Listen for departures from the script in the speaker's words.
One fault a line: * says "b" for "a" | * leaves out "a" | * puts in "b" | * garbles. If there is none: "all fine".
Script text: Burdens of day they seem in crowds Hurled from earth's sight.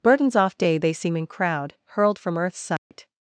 * says "off" for "of"
* says "crowd" for "crowds"